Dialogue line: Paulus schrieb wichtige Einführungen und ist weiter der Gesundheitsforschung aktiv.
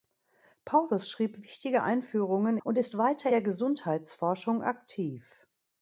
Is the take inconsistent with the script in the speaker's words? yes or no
no